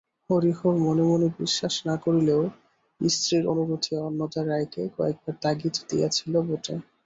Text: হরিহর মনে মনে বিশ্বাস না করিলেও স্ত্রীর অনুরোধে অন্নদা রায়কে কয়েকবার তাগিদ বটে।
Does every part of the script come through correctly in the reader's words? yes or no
no